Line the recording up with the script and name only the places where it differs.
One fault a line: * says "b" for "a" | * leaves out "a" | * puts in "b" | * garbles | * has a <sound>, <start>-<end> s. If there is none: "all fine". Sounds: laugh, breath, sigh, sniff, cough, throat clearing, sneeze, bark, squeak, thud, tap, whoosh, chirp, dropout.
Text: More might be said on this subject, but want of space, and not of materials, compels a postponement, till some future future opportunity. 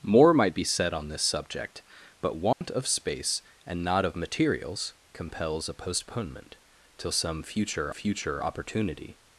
* has a dropout, 2.5-2.6 s